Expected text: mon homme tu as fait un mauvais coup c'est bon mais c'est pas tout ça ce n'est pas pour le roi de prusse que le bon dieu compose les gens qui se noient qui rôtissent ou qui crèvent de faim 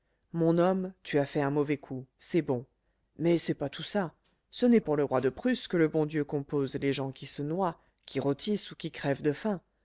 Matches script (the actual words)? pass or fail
fail